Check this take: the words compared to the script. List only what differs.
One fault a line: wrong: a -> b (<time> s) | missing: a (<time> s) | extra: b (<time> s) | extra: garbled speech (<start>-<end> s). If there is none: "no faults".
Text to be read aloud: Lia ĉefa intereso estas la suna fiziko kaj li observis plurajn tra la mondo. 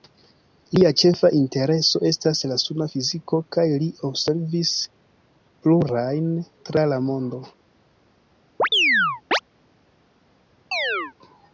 no faults